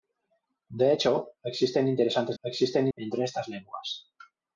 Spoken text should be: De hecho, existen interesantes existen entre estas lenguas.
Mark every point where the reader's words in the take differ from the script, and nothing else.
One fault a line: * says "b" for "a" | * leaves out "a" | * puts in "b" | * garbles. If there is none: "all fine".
all fine